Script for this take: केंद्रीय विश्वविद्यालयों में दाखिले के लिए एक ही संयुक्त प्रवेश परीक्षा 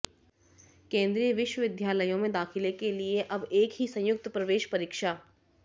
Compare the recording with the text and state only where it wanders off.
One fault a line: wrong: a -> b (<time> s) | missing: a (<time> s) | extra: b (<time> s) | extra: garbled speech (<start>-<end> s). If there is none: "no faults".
extra: अब (3.3 s)